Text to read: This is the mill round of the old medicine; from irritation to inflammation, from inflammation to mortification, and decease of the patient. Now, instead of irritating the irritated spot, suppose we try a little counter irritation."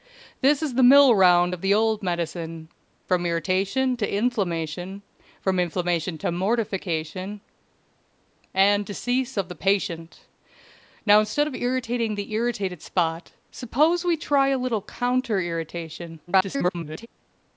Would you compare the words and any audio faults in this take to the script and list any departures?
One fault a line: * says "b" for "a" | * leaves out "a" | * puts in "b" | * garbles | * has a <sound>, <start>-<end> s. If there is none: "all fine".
* garbles